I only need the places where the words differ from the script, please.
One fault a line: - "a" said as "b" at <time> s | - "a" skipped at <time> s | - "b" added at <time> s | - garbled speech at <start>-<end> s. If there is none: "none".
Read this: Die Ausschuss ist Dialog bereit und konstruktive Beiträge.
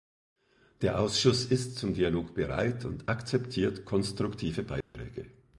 - "Die" said as "Der" at 0.8 s
- "zum" added at 1.8 s
- "akzeptiert" added at 3.1 s